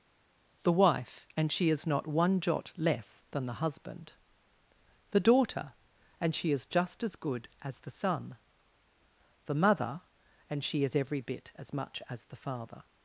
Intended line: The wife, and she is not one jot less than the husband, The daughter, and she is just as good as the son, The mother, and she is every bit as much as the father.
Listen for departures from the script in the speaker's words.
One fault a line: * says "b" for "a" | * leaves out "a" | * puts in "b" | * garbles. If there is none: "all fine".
all fine